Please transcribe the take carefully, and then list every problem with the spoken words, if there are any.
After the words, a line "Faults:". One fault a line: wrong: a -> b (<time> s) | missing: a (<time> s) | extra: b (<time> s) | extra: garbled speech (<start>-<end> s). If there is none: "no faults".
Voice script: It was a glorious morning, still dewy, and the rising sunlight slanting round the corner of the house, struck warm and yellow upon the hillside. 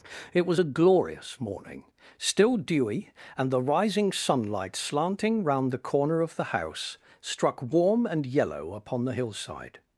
It was a glorious morning, still dewy, and the rising sunlight slanting round the corner of the house, struck warm and yellow upon the hillside.
Faults:
no faults